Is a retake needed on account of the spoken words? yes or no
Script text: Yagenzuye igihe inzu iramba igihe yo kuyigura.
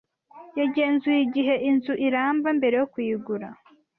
yes